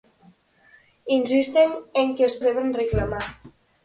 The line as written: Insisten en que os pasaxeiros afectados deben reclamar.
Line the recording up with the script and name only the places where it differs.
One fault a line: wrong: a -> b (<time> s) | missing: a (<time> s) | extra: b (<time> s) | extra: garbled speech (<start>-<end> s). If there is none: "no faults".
missing: pasaxeiros afectados (2.4 s)